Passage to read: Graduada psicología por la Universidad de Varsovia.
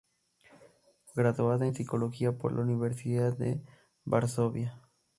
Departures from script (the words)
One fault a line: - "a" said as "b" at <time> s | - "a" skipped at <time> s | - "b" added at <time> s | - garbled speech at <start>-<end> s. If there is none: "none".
- "en" added at 1.6 s